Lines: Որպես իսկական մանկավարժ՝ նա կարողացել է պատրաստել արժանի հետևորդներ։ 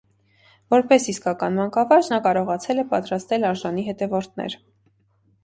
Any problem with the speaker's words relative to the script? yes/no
no